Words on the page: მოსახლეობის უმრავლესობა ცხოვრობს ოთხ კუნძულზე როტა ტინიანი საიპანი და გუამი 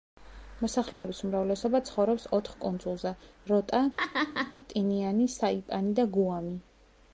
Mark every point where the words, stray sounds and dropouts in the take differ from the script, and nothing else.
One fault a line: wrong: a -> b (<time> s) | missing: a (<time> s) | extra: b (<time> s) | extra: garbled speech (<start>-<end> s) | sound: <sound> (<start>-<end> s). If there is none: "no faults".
sound: dropout (0.9-1.0 s)
sound: laugh (4.0-4.5 s)